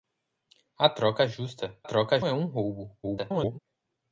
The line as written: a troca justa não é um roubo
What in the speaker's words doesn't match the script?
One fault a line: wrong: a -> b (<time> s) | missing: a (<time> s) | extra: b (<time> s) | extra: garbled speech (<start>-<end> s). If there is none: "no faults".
wrong: não -> troca (1.8 s)
extra: garbled speech (3.0-3.6 s)